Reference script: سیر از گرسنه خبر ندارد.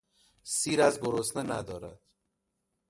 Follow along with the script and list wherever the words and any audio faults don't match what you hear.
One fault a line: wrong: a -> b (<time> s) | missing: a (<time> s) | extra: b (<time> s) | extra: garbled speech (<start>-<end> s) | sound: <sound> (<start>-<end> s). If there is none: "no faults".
missing: خبر (1.4 s)